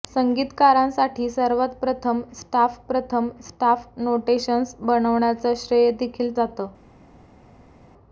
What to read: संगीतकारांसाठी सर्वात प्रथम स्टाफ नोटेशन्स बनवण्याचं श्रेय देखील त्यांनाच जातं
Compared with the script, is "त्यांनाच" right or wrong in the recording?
wrong